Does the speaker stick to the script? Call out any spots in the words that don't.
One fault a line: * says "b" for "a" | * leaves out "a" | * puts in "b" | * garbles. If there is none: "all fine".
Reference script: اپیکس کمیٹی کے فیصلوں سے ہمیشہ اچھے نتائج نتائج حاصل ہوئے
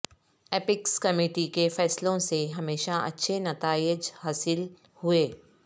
* leaves out "نتائج"